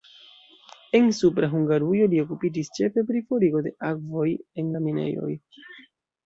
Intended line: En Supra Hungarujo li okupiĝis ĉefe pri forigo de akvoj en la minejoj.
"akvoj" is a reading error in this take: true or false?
false